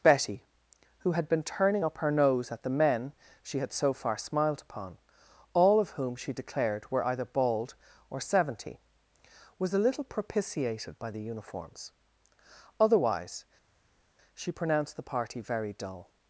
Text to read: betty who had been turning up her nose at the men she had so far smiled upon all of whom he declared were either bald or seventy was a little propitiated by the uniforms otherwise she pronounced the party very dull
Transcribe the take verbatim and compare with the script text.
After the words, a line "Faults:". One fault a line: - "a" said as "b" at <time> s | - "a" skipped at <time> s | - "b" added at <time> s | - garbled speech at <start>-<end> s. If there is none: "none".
betty who had been turning up her nose at the men she had so far smiled upon all of whom she declared were either bald or seventy was a little propitiated by the uniforms otherwise she pronounced the party very dull
Faults:
- "he" said as "she" at 6.2 s